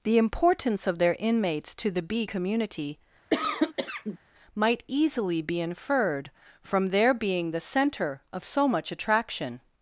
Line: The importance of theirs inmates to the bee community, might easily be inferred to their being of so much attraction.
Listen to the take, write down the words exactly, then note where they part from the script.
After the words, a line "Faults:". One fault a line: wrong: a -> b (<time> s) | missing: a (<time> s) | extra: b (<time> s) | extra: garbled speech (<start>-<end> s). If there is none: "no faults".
The importance of their inmates to the bee community, might easily be inferred from their being the center of so much attraction.
Faults:
wrong: theirs -> their (1.0 s)
wrong: to -> from (6.6 s)
extra: the center (7.5 s)